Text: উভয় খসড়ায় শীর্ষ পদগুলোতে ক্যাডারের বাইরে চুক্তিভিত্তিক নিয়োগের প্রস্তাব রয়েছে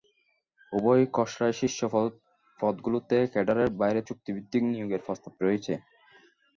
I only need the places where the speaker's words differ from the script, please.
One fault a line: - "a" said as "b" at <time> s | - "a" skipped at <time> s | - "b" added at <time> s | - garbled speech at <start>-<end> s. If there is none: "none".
none